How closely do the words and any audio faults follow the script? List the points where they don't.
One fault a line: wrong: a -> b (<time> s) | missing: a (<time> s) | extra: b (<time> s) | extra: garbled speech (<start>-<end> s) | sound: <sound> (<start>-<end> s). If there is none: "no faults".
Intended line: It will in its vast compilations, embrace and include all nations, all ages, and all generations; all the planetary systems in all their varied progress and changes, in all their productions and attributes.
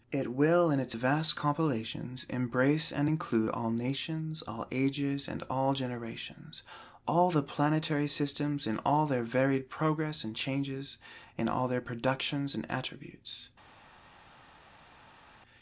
no faults